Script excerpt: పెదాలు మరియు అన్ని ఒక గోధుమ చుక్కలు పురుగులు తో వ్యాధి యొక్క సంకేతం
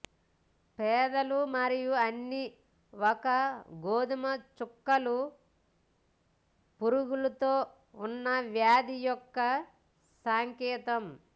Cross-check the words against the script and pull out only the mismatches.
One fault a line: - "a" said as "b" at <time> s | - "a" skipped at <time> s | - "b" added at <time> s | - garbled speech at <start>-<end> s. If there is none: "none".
- "ఉన్న" added at 8.0 s